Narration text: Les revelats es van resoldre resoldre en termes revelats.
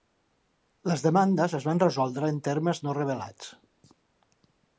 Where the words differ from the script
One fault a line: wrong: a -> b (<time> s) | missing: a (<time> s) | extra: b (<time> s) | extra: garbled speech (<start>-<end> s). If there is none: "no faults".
wrong: revelats -> demandes (1.1 s)
missing: resoldre (2.3 s)
extra: no (2.9 s)